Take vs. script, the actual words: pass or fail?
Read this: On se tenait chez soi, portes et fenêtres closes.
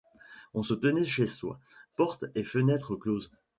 pass